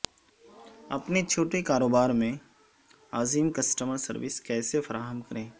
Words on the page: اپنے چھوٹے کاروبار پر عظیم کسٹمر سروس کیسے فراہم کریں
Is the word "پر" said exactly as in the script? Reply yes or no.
no